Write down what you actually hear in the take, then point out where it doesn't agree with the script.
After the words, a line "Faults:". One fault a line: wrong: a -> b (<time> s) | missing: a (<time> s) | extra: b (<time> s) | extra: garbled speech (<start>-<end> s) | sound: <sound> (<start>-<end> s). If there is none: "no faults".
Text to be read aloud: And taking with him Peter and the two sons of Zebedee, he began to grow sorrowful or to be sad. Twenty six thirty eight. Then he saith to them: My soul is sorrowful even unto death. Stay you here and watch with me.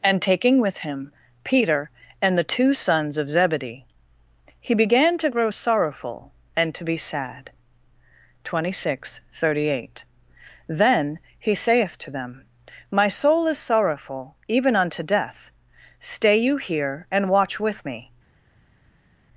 And taking with him Peter and the two sons of Zebedee, he began to grow sorrowful and to be sad. Twenty six thirty eight. Then he saith to them: My soul is sorrowful even unto death. Stay you here and watch with me.
Faults:
wrong: or -> and (6.6 s)